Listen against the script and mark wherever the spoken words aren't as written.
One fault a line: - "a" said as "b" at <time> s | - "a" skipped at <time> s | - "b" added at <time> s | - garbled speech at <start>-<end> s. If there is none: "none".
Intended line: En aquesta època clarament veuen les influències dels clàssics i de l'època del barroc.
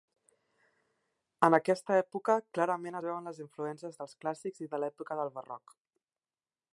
none